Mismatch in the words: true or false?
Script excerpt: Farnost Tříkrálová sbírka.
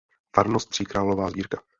false